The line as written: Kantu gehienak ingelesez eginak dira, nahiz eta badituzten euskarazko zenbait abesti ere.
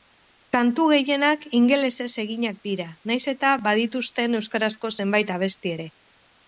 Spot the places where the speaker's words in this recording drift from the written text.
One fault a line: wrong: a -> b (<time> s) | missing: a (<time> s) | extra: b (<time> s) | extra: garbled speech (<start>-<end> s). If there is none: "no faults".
no faults